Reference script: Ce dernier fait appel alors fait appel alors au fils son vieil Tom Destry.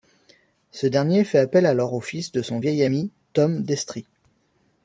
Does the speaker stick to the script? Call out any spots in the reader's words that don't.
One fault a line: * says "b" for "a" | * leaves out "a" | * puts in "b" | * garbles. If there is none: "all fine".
* leaves out "fait appel alors"
* puts in "de"
* puts in "ami"